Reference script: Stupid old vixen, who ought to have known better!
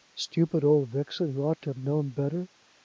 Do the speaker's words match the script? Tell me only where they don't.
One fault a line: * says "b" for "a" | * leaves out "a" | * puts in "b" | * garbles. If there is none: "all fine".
all fine